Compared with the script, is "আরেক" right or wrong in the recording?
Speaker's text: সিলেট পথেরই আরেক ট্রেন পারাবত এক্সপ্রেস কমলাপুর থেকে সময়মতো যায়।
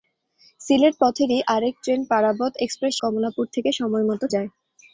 right